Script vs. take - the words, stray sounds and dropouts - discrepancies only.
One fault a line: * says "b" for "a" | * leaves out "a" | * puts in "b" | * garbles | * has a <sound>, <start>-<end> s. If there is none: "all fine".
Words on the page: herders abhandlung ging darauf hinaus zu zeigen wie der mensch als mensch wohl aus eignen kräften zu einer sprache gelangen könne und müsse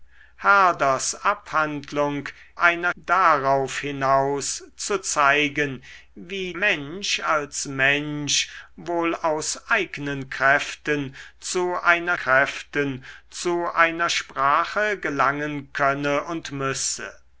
* says "einer" for "ging"
* leaves out "der"
* puts in "kräften zu einer"